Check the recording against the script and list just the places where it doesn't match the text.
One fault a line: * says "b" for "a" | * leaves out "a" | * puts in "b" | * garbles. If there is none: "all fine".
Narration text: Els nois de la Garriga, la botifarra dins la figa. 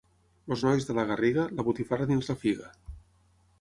all fine